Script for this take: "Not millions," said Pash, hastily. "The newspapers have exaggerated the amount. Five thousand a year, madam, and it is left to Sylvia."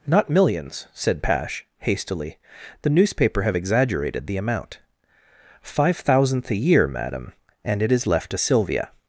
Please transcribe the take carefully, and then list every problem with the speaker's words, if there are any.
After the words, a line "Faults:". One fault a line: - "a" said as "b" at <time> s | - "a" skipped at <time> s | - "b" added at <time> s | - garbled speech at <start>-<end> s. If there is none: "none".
"Not millions," said Pash, hastily. "The newspaper have exaggerated the amount. Five thousandth a year, madam, and it is left to Sylvia."
Faults:
- "newspapers" said as "newspaper" at 2.9 s
- "thousand" said as "thousandth" at 6.0 s